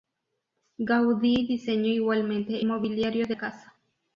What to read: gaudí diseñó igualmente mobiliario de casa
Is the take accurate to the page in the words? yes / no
yes